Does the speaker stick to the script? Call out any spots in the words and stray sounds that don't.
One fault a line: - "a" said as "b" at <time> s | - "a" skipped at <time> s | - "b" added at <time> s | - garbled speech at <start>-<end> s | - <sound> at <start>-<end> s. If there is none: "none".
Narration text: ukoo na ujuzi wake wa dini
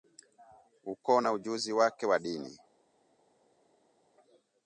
none